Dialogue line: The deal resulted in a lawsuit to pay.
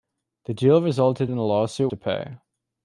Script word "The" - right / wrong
right